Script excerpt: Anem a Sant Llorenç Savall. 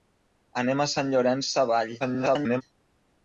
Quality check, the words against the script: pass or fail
fail